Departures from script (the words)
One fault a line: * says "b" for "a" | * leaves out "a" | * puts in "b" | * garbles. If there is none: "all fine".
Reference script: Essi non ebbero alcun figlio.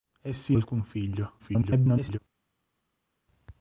* leaves out "non ebbero"
* garbles